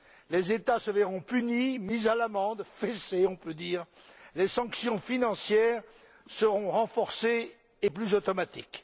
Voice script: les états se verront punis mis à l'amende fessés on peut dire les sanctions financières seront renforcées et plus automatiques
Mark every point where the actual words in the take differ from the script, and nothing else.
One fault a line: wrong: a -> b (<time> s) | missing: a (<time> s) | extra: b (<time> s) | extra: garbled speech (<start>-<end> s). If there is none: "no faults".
no faults